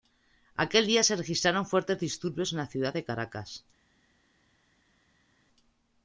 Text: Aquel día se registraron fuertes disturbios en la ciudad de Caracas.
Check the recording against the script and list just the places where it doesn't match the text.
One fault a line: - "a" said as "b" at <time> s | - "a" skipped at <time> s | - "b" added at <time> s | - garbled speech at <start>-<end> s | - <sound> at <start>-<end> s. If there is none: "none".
none